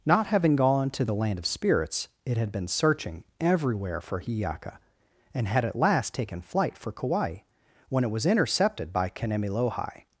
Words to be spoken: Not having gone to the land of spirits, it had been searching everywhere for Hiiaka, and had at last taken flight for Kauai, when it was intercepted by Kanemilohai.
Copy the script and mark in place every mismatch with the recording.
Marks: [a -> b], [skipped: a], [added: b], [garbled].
Not having gone to the land of spirits, it had been searching everywhere for Hiiaka, and had at last taken flight for Kauai, when it was intercepted by Kanemilohai.